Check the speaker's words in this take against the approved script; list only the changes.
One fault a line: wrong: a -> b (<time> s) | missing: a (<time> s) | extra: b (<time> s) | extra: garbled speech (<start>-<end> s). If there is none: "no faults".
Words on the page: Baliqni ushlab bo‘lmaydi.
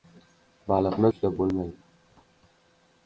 no faults